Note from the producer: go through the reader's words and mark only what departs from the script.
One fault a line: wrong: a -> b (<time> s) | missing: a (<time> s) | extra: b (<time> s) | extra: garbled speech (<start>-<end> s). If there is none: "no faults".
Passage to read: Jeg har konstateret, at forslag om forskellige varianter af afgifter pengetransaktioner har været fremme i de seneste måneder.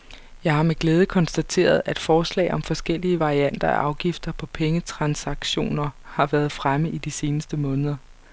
extra: med glæde (0.6 s)
extra: på (4.3 s)